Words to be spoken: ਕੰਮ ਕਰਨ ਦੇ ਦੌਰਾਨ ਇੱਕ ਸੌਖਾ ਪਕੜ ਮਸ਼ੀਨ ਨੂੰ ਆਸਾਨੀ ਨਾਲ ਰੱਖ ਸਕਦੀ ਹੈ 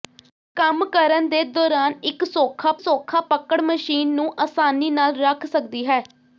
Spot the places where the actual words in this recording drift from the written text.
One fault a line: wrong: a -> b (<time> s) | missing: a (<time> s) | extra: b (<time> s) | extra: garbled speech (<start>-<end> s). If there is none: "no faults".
extra: ਸੌਖਾ (2.8 s)